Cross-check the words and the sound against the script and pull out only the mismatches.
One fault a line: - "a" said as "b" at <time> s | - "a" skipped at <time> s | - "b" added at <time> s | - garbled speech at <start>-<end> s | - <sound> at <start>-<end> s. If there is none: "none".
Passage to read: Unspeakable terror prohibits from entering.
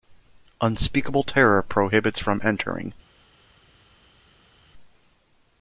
none